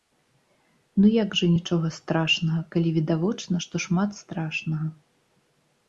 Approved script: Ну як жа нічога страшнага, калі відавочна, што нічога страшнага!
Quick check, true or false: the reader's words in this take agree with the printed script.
false